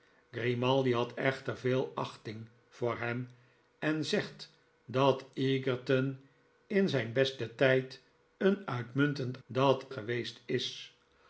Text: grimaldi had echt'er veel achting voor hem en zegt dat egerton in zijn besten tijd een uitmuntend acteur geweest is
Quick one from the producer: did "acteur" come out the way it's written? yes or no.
no